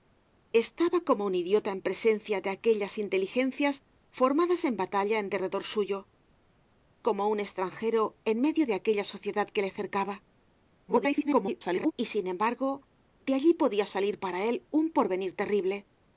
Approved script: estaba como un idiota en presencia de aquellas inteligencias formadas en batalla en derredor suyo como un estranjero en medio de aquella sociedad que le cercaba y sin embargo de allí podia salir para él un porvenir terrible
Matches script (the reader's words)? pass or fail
fail